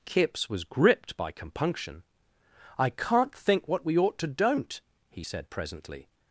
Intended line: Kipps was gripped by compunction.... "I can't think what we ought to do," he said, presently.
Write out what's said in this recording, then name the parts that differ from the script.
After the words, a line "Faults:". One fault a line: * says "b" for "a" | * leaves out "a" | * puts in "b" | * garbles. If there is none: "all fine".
Kipps was gripped by compunction.... "I can't think what we ought to don't," he said, presently.
Faults:
* says "don't" for "do"